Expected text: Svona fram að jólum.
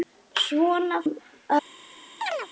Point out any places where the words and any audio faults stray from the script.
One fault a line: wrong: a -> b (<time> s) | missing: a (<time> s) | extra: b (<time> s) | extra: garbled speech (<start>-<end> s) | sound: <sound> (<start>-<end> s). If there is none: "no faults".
missing: fram (1.0 s)
sound: chirp (2.2-2.5 s)